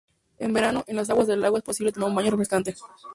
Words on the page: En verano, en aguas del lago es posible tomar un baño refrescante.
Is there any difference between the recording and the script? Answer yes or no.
yes